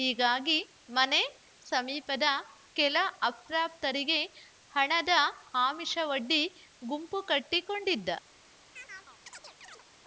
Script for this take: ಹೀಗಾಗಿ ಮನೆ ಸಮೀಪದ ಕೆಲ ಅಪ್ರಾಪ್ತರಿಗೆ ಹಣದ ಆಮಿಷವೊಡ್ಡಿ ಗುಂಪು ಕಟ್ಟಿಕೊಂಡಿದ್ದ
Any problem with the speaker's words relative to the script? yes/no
no